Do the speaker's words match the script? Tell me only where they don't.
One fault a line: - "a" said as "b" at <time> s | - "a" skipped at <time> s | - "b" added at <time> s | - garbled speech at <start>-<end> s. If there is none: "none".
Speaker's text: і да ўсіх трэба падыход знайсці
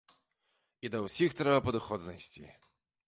none